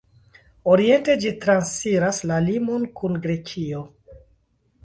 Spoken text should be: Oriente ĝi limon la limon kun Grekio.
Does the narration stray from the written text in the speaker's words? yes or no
yes